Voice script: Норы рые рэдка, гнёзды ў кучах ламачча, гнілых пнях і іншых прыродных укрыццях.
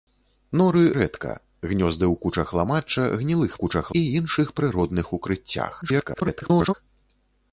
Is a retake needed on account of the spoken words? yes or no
yes